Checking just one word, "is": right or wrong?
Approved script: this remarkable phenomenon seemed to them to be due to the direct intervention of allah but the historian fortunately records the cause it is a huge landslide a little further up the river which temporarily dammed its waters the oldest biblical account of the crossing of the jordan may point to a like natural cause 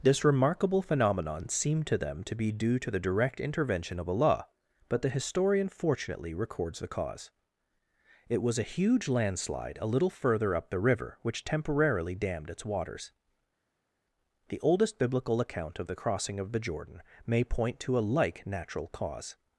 wrong